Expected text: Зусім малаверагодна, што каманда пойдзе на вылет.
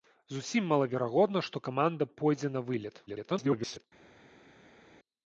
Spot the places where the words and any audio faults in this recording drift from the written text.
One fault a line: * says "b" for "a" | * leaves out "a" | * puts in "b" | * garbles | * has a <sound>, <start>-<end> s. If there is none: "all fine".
* garbles